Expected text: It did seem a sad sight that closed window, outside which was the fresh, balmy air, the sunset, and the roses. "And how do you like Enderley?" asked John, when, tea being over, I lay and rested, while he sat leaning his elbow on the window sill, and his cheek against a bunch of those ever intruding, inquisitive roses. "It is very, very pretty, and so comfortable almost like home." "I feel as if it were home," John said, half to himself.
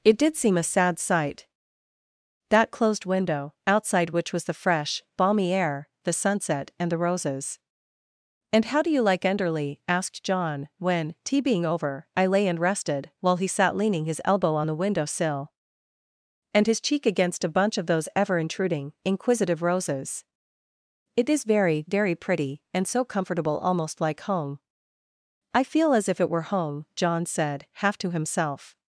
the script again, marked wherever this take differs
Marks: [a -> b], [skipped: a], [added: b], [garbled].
It did seem a sad sight that closed window, outside which was the fresh, balmy air, the sunset, and the roses. "And how do you like Enderley?" asked John, when, tea being over, I lay and rested, while he sat leaning his elbow on the window sill, and his cheek against a bunch of those ever intruding, inquisitive roses. "It is very, very pretty, and so comfortable almost like home." "I feel as if it were home," John said, half to himself.